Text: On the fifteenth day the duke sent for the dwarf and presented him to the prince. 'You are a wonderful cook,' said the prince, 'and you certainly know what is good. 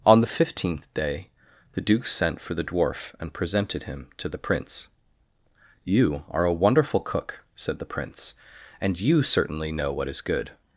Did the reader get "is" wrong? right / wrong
right